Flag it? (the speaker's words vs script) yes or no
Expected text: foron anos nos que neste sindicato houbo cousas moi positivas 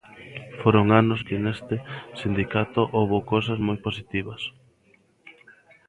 yes